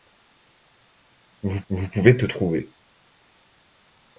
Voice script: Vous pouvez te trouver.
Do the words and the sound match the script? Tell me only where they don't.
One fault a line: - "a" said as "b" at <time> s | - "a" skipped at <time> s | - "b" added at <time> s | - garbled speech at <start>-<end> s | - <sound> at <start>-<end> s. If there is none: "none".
- "vous" added at 1.7 s